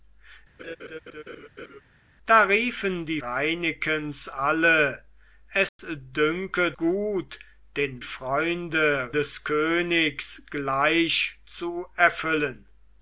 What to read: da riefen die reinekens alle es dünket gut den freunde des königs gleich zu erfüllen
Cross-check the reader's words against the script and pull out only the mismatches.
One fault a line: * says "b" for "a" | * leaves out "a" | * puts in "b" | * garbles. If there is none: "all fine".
all fine